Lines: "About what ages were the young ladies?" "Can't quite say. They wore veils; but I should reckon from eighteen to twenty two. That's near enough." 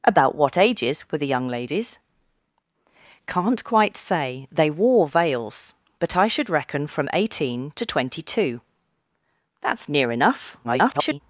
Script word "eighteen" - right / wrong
right